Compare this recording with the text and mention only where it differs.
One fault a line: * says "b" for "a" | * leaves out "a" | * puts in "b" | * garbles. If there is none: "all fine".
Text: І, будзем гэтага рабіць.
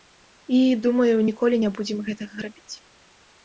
* puts in "думаю ніколі не"